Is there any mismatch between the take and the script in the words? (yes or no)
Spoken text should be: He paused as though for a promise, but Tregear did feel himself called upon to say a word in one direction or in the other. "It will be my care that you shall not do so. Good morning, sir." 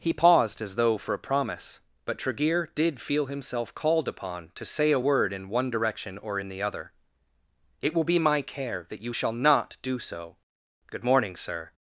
no